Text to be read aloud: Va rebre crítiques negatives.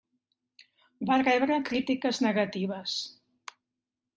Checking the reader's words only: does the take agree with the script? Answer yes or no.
yes